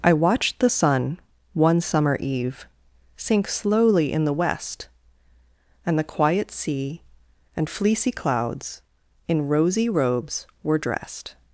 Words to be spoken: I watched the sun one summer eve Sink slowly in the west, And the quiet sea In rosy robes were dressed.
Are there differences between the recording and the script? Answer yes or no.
yes